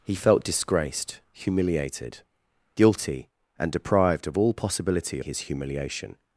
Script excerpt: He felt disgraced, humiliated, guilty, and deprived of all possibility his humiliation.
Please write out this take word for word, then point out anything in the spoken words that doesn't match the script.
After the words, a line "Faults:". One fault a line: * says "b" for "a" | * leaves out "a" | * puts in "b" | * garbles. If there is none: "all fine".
He felt disgraced, humiliated, guilty, and deprived of all possibility his humiliation.
Faults:
all fine